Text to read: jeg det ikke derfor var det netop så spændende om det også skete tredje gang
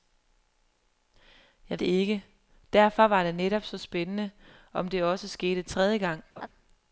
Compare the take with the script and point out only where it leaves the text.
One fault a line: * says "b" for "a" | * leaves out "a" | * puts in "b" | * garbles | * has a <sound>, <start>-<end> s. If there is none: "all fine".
* has a laugh, 6.4-6.5 s